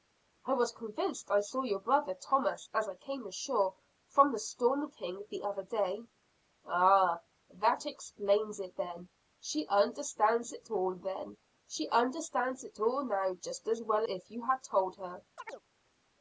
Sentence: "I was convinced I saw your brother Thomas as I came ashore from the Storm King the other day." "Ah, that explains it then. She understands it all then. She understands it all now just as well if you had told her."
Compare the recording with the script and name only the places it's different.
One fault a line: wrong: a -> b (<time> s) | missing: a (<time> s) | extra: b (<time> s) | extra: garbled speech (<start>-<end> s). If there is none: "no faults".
no faults